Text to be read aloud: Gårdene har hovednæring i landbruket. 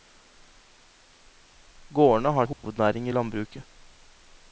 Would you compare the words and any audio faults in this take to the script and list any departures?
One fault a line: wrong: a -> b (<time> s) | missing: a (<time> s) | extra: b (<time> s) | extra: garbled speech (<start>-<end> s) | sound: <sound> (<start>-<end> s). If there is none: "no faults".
sound: dropout (2.5-2.6 s)